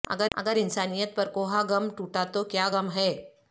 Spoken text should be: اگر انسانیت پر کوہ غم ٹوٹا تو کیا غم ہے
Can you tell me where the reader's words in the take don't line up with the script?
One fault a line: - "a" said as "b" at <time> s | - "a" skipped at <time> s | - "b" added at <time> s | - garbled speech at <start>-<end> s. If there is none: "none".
- "اگر" added at 0.4 s